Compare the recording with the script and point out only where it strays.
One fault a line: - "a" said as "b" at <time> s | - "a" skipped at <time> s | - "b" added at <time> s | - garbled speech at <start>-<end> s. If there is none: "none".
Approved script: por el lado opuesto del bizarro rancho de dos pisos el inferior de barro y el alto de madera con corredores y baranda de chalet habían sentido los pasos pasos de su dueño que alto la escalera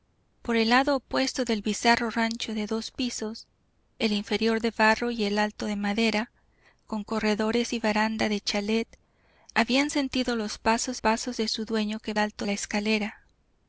none